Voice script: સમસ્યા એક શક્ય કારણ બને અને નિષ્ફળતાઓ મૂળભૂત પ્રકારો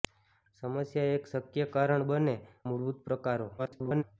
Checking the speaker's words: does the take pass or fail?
fail